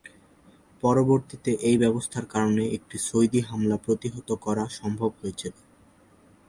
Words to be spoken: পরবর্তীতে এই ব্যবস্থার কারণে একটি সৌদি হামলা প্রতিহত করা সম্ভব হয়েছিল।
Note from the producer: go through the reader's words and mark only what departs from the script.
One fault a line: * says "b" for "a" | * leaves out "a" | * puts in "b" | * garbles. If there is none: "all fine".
all fine